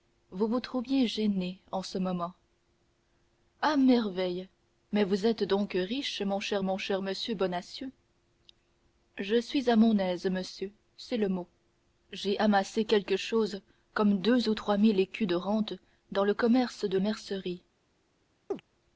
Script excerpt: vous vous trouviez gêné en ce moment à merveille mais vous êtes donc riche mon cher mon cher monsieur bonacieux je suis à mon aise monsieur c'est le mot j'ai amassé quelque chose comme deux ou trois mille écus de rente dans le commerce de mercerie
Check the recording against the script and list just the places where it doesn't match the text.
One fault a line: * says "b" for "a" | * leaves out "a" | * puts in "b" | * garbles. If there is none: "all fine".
all fine